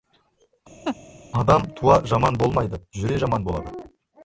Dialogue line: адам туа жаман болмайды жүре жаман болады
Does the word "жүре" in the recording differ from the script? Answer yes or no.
no